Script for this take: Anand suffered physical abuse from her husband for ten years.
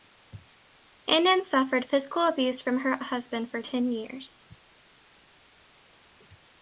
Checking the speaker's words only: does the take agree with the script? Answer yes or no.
yes